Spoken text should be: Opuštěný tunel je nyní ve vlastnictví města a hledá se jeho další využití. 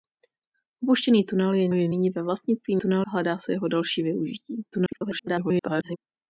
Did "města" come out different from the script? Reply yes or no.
yes